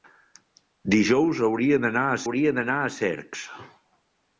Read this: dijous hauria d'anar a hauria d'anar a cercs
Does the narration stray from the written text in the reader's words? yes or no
no